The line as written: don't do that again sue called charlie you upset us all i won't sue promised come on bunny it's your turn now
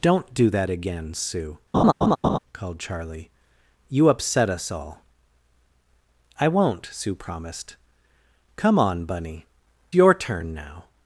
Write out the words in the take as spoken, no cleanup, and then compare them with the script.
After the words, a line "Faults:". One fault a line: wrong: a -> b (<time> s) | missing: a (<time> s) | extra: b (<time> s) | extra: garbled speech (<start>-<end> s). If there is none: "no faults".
don't do that again sue called charlie you upset us all i won't sue promised come on bunny your turn now
Faults:
missing: it's (9.5 s)